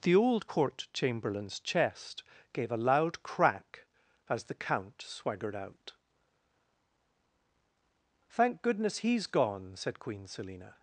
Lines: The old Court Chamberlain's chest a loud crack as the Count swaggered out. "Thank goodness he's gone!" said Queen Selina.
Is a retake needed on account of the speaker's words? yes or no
yes